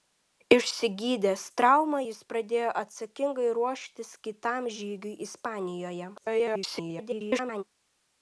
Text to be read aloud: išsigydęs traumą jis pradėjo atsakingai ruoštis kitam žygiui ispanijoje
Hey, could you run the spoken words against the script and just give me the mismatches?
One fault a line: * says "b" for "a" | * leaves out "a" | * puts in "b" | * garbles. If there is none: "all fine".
* garbles